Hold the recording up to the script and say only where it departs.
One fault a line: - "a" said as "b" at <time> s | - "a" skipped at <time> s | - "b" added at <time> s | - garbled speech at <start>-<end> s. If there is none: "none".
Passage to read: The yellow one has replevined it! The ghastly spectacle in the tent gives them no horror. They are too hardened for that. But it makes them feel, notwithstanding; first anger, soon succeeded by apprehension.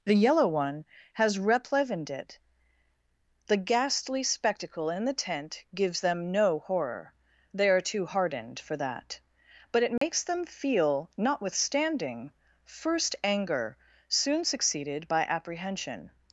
none